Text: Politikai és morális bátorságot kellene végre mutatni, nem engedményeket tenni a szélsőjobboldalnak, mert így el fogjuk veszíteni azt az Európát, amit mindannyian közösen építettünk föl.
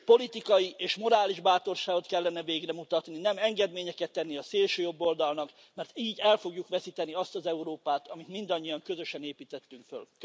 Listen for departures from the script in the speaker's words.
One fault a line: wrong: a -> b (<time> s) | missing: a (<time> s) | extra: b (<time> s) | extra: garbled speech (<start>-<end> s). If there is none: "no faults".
no faults